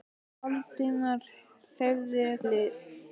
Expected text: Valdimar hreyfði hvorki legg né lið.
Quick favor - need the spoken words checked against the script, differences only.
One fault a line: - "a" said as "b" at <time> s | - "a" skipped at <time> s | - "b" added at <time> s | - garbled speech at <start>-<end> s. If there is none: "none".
- "hvorki legg né" skipped at 2.2 s